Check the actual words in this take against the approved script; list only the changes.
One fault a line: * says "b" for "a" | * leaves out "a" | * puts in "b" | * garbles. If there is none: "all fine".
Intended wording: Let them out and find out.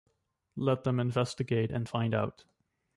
* says "investigate" for "out"